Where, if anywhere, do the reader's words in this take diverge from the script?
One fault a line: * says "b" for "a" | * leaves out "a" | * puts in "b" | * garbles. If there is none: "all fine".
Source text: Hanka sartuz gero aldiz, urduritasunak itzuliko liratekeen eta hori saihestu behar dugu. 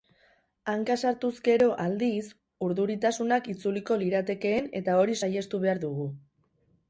all fine